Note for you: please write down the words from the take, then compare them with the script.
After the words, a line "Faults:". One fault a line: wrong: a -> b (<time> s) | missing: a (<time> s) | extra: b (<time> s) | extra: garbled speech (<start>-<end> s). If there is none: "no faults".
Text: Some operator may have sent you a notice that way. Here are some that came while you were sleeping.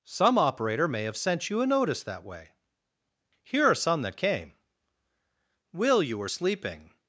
Some operator may have sent you a notice that way. Here are some that came will you were sleeping.
Faults:
wrong: while -> will (5.7 s)